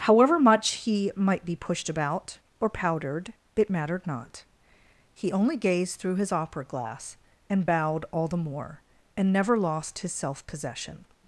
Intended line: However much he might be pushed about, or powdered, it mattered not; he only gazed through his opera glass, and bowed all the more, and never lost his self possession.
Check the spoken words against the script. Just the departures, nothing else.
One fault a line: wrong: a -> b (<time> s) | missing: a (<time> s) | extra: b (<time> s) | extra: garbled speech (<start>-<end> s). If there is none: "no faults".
no faults